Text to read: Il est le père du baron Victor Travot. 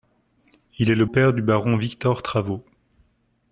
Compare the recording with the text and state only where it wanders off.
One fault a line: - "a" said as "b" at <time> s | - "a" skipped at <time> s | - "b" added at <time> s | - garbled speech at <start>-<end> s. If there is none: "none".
none